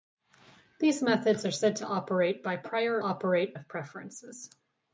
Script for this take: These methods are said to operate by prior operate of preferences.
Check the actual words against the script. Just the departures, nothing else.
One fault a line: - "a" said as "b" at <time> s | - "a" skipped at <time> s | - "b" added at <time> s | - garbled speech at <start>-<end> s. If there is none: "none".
none